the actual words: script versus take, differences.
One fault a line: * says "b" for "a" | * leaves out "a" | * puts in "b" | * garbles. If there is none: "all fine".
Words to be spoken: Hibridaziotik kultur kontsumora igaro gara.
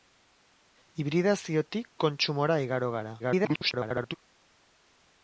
* leaves out "kultur"
* garbles